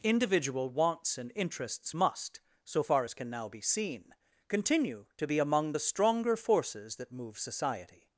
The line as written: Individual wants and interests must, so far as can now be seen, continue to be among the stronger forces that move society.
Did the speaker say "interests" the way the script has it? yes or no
yes